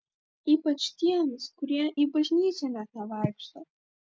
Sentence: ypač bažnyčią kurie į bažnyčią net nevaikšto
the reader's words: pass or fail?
fail